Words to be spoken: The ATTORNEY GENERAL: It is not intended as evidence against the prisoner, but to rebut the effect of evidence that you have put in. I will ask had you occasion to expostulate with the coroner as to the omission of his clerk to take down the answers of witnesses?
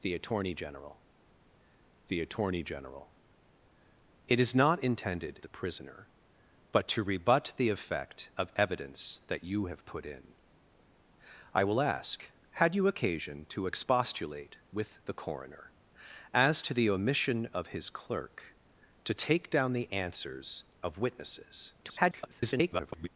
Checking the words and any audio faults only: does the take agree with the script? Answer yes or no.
no